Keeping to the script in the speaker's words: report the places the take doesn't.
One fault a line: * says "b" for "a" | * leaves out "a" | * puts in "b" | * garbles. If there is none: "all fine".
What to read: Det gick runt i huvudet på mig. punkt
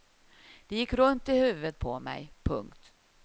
all fine